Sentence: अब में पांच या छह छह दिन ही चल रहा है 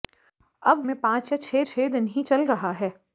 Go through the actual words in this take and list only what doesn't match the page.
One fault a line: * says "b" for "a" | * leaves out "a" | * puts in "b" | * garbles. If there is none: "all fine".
all fine